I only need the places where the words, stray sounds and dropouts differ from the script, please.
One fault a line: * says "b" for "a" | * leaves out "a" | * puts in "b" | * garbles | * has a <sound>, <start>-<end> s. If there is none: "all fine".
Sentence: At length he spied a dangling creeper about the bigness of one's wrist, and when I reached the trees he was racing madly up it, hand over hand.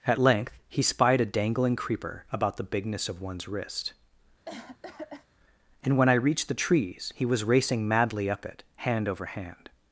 * has a cough, 4.5-5.3 s